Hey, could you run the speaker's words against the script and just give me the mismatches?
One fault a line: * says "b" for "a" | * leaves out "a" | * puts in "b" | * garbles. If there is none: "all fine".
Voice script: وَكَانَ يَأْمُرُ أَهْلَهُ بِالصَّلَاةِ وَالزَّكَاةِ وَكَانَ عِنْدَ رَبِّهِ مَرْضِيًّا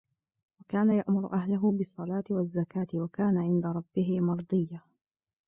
all fine